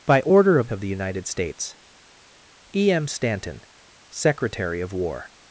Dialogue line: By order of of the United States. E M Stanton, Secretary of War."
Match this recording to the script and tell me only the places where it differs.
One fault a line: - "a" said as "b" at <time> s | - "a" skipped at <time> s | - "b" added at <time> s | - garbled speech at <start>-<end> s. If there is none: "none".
none